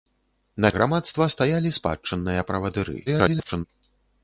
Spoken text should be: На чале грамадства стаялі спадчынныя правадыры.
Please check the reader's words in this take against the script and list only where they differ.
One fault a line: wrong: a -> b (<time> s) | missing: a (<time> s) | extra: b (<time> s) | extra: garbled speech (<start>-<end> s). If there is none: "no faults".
missing: чале (0.7 s)
extra: garbled speech (3.1-3.7 s)